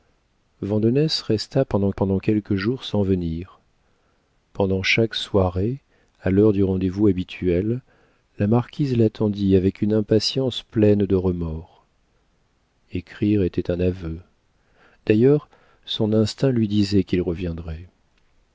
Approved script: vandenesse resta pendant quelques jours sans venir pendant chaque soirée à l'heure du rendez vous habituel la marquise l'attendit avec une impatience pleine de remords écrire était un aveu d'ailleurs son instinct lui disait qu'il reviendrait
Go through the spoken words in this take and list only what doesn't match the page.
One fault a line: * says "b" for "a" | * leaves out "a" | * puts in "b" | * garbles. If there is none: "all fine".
* puts in "pendant"